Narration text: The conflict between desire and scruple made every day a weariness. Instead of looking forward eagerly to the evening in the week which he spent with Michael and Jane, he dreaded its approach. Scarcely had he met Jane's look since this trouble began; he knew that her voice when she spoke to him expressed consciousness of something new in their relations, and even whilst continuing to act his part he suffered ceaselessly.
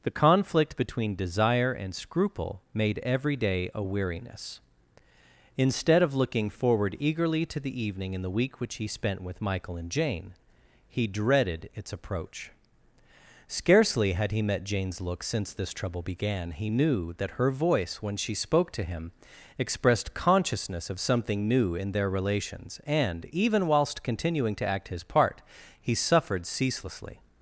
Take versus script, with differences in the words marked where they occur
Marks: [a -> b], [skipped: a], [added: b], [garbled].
The conflict between desire and scruple made every day a weariness. Instead of looking forward eagerly to the evening in the week which he spent with Michael and Jane, he dreaded its approach. Scarcely had he met Jane's look since this trouble began; he knew that her voice when she spoke to him expressed consciousness of something new in their relations, and even whilst continuing to act his part he suffered ceaselessly.